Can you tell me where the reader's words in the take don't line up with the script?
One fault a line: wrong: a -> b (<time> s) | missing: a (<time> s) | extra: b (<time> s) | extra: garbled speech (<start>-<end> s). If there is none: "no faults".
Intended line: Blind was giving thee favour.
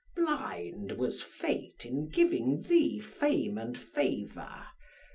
extra: fate in (1.2 s)
extra: fame and (3.0 s)